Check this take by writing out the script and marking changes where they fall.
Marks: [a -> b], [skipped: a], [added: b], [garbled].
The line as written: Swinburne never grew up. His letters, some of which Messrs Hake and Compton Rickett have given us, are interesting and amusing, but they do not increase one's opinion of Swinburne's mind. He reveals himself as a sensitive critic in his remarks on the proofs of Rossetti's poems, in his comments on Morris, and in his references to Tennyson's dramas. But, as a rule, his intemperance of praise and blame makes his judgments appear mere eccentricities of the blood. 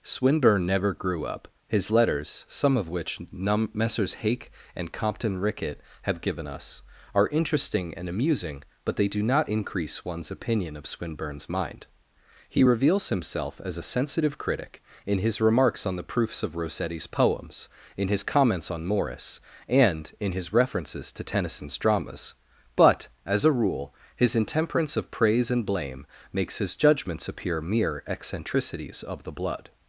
Swinburne never grew up. His letters, some of which [added: num] Messrs Hake and Compton Rickett have given us, are interesting and amusing, but they do not increase one's opinion of Swinburne's mind. He reveals himself as a sensitive critic in his remarks on the proofs of Rossetti's poems, in his comments on Morris, and in his references to Tennyson's dramas. But, as a rule, his intemperance of praise and blame makes his judgments appear mere eccentricities of the blood.